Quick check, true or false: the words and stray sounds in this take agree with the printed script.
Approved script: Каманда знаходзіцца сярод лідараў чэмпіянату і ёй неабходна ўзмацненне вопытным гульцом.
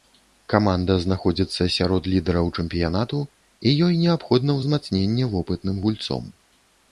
true